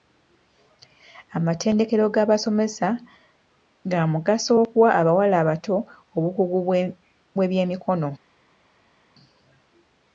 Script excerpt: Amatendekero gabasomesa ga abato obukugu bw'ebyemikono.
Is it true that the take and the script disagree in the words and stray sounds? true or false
true